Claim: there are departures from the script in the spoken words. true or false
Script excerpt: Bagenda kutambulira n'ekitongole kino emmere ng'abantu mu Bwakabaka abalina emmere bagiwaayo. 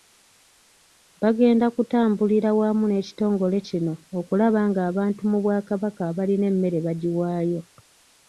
true